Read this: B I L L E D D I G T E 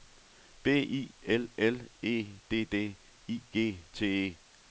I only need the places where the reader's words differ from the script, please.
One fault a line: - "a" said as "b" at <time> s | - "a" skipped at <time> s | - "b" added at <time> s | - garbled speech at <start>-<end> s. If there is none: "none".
none